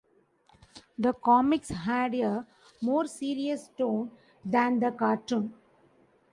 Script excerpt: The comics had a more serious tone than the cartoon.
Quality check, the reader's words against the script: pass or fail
pass